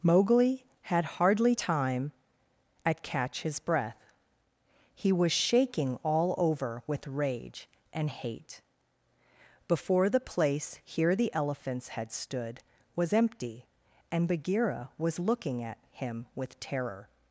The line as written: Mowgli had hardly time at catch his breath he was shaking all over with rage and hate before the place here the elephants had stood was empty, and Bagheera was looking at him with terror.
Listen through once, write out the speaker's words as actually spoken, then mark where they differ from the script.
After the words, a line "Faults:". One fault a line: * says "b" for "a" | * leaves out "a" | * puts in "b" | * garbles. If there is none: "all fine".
Mowgli had hardly time at catch his breath he was shaking all over with rage and hate before the place here the elephants had stood was empty, and Bagheera was looking at him with terror.
Faults:
all fine